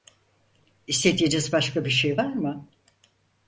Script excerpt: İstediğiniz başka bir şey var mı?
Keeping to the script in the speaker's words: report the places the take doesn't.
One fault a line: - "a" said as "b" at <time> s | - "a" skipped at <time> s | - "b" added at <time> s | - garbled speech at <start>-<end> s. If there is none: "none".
none